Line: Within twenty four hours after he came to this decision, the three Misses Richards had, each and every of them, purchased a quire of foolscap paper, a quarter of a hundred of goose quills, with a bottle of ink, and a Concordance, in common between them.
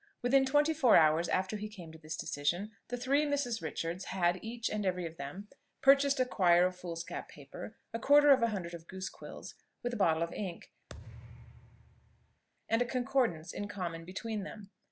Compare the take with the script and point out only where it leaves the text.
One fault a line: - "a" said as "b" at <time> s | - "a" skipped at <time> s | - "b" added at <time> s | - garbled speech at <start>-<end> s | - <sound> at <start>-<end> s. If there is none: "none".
- thud at 10.9-12.4 s